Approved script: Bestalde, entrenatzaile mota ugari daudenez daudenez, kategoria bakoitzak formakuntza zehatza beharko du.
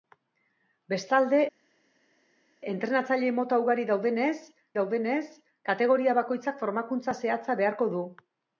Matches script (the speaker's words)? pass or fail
pass